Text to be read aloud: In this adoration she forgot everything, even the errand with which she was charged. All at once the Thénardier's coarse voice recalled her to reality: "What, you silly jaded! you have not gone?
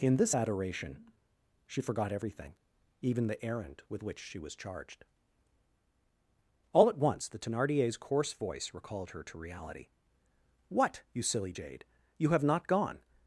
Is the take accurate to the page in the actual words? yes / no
no